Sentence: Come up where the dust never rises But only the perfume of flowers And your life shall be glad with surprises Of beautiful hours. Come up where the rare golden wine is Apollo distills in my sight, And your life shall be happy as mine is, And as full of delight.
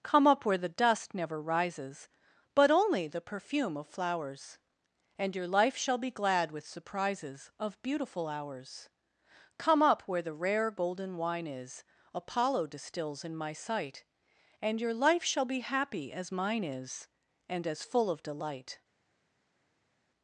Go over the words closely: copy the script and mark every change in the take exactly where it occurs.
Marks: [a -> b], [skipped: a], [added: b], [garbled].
Come up where the dust never rises But only the perfume of flowers And your life shall be glad with surprises Of beautiful hours. Come up where the rare golden wine is Apollo distills in my sight, And your life shall be happy as mine is, And as full of delight.